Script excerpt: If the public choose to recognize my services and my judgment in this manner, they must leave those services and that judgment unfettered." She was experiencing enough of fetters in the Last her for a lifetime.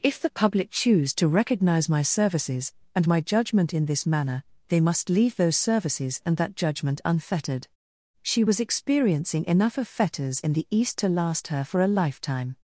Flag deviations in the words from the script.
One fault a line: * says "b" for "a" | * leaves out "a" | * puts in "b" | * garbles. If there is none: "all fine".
* puts in "East to"